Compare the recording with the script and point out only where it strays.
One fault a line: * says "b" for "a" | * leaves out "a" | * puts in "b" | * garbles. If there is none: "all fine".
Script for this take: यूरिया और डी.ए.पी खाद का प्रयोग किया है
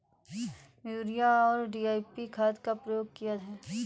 all fine